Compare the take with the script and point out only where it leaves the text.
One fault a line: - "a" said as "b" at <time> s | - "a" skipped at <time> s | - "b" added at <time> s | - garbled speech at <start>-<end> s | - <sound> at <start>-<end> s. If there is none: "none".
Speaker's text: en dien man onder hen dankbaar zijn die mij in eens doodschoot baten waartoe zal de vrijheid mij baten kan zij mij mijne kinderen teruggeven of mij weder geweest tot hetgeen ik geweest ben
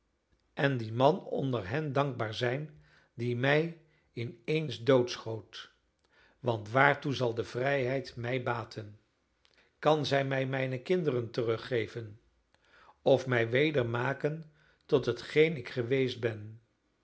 - "baten" said as "want" at 6.4 s
- "geweest" said as "maken" at 13.8 s